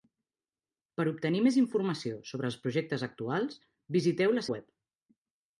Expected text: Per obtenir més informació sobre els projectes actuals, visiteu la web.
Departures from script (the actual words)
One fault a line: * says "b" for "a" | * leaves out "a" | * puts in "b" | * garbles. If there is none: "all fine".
all fine